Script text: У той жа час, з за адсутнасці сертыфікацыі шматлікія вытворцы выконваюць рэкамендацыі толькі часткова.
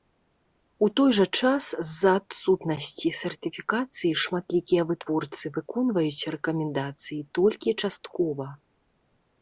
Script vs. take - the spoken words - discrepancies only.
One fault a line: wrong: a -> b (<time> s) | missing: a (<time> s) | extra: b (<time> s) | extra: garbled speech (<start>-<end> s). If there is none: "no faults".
no faults